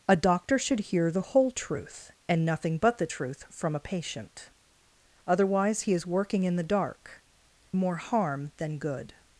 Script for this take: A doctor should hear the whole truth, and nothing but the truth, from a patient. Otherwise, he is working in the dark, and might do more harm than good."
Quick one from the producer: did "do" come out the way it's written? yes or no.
no